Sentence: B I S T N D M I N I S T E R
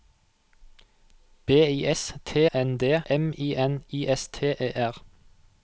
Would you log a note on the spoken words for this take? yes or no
no